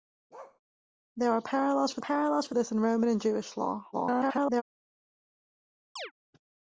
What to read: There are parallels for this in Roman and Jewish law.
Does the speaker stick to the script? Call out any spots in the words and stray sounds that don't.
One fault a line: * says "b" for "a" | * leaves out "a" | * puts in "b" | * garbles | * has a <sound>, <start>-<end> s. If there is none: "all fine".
* has a bark, 0.3-0.6 s
* puts in "parallels for"
* garbles
* has a chirp, 6.0-6.1 s